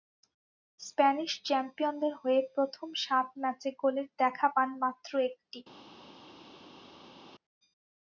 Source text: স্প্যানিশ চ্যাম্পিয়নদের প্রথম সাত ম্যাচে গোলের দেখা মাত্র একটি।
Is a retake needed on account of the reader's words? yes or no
yes